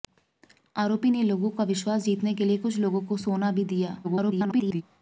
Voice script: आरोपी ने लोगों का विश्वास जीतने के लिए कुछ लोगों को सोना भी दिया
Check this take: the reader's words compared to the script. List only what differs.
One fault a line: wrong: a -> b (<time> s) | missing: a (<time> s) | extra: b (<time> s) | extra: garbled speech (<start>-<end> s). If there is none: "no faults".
extra: garbled speech (4.0-4.8 s)